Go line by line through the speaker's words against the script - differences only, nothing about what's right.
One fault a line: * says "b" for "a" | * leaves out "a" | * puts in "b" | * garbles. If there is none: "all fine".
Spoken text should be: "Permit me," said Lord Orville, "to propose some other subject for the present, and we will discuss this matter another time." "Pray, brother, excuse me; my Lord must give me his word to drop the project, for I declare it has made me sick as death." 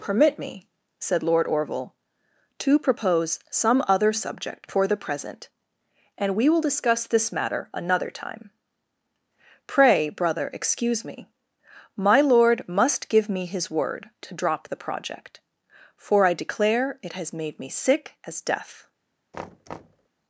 all fine